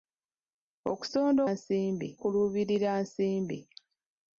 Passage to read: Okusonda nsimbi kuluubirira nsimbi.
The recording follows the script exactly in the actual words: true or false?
true